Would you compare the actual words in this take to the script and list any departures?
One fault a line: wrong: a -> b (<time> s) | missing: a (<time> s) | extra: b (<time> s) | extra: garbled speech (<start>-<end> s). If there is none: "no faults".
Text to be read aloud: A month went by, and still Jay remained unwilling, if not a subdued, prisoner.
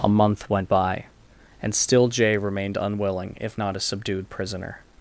no faults